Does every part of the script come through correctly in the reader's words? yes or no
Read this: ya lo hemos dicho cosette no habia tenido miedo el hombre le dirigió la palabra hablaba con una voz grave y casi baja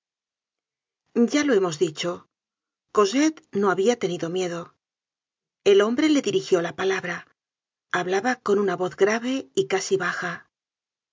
yes